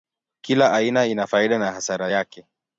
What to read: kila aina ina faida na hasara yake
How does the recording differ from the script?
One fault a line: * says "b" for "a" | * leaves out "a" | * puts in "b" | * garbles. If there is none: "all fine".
all fine